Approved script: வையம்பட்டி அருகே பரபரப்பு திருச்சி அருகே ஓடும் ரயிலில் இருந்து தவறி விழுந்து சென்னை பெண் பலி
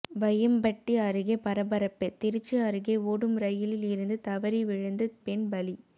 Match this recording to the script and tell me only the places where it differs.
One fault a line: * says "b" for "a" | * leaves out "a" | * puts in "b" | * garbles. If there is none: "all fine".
* leaves out "சென்னை"